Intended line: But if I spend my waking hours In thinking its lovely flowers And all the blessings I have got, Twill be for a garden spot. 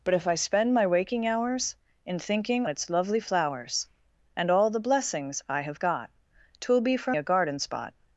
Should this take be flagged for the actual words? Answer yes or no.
no